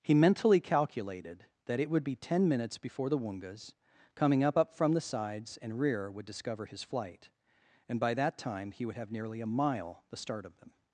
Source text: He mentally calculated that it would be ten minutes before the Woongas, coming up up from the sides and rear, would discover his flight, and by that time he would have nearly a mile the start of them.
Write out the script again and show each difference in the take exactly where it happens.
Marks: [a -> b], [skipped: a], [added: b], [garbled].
He mentally calculated that it would be ten minutes before the Woongas, coming up up from the sides and rear, would discover his flight, and by that time he would have nearly a mile the start of them.